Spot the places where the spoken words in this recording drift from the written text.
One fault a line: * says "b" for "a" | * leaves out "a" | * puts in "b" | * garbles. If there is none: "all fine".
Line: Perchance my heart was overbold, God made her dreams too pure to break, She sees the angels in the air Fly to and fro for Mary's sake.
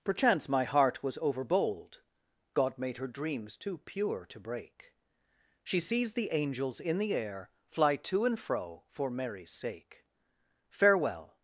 * puts in "Farewell"